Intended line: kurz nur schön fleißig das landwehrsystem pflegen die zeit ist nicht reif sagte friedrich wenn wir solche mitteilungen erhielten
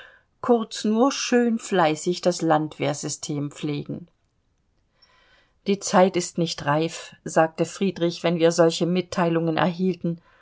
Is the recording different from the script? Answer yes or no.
no